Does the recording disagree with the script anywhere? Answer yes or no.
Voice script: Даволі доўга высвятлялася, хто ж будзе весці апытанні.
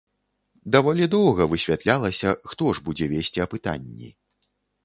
no